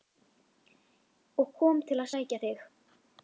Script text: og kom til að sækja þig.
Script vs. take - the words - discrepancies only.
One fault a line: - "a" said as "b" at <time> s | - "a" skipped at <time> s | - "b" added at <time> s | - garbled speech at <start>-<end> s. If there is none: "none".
none